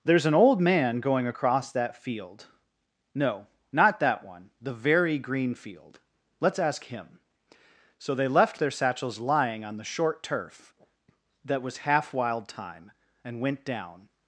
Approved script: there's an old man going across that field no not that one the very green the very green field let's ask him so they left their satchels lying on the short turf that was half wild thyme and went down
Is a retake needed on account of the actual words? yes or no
yes